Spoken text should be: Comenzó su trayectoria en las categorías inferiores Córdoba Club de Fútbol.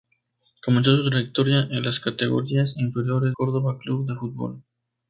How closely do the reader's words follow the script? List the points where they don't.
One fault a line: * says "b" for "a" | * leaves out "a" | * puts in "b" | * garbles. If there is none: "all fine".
all fine